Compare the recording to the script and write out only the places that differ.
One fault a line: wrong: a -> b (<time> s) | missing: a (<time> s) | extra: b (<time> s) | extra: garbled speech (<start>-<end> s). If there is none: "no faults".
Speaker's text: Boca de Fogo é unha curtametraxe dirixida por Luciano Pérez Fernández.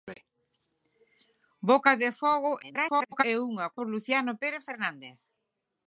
extra: garbled speech (2.6-3.2 s)
missing: curtametraxe dirixida (3.7 s)